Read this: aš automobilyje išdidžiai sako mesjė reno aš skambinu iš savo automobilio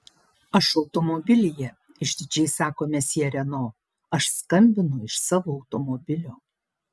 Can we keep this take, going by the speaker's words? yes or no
yes